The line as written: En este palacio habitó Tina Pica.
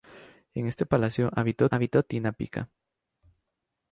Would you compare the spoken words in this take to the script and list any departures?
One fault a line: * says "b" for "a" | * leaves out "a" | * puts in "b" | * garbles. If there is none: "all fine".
* puts in "habitó"